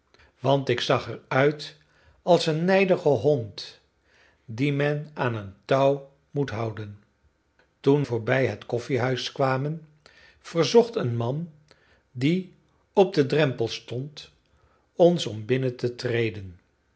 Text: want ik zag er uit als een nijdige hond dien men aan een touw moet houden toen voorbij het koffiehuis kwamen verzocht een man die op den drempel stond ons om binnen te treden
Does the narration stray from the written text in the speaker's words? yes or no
no